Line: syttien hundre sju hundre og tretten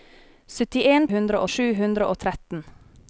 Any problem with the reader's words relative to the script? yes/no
no